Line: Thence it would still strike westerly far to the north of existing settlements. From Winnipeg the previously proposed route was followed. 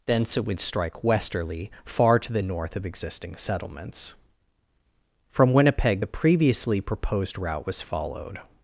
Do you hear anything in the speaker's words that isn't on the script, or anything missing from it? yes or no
yes